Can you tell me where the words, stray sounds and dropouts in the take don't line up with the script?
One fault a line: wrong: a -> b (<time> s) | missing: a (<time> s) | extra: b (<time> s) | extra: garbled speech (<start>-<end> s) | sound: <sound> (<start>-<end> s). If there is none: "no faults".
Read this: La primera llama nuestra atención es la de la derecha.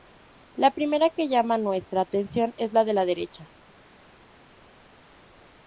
extra: que (1.1 s)